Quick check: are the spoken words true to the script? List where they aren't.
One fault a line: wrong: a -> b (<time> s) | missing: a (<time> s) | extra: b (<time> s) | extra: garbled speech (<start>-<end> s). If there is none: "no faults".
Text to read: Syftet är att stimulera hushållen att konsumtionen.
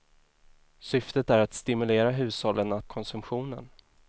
no faults